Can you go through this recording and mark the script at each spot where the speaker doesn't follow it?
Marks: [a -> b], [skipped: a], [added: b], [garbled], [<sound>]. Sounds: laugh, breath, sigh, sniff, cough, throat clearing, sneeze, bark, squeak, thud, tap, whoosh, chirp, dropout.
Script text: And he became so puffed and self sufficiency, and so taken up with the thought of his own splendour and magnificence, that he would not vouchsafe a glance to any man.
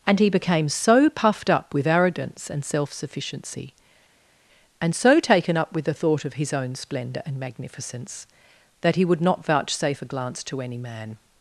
And he became so puffed [added: up with arrogance] and self sufficiency, and so taken up with the thought of his own splendour and magnificence, that he would not vouchsafe a glance to any man.